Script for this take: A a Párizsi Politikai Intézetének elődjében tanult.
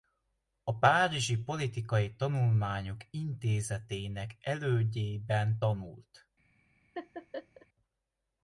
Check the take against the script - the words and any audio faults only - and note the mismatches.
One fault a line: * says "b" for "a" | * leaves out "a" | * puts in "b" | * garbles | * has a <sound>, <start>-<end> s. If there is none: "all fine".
* leaves out "a"
* puts in "Tanulmányok"
* has a laugh, 7.0-7.7 s